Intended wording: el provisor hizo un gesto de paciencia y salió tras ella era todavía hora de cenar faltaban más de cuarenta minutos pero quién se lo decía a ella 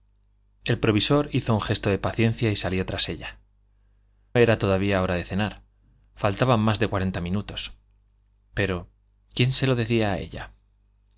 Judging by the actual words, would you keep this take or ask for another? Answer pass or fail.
pass